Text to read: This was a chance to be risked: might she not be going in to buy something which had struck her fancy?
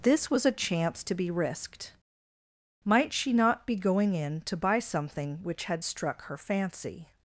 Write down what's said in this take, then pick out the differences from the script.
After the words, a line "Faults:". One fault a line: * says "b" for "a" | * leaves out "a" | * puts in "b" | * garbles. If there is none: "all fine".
This was a chance to be risked: might she not be going in to buy something which had struck her fancy?
Faults:
all fine